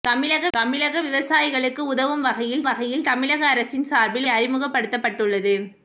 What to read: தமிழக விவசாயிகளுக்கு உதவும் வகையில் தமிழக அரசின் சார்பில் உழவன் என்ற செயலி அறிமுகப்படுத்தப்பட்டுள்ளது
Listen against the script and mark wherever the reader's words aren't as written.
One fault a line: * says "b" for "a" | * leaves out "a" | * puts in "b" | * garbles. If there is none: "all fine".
* puts in "தமிழக"
* puts in "வகையில்"
* leaves out "உழவன் என்ற செயலி"